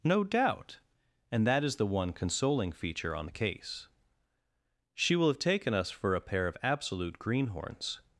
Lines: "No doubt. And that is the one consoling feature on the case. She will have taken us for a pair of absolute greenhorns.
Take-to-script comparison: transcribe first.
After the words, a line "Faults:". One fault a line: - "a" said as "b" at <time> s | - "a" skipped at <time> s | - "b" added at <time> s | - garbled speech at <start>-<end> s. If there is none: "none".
"No doubt. And that is the one consoling feature on the case. She will have taken us for a pair of absolute greenhorns.
Faults:
none